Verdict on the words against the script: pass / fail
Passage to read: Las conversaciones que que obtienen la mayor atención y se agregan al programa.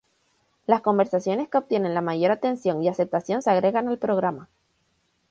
fail